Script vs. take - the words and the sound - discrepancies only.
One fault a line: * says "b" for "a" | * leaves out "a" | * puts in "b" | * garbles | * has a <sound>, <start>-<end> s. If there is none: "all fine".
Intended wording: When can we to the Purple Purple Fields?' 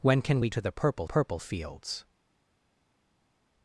all fine